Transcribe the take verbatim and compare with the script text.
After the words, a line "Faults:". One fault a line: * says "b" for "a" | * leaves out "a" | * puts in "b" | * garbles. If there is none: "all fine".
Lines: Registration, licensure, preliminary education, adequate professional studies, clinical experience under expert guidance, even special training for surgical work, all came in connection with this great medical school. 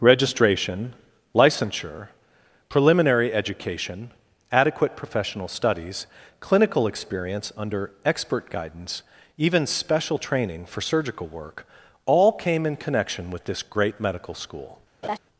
Registration, licensure, preliminary education, adequate professional studies, clinical experience under expert guidance, even special training for surgical work, all came in connection with this great medical school.
Faults:
all fine